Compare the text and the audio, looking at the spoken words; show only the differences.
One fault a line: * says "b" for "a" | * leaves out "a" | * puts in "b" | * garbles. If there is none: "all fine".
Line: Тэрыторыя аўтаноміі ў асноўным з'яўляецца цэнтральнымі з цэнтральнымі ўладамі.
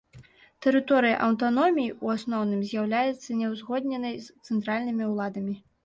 * says "няўзгодненай" for "цэнтральнымі"